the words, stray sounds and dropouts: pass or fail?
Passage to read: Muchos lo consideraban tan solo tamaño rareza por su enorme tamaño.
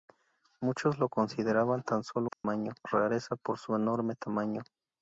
fail